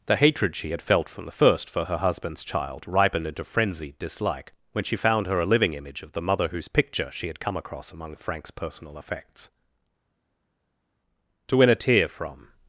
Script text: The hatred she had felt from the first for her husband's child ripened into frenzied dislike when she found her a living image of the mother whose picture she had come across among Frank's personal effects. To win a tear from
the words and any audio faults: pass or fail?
pass